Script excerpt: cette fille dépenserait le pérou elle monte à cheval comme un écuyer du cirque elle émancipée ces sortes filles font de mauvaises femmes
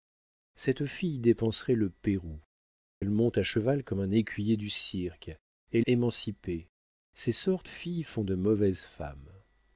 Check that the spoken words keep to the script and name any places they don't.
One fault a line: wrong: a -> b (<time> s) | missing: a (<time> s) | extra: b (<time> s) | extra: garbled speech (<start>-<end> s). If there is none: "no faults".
no faults